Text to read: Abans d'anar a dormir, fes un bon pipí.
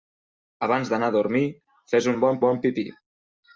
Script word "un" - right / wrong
right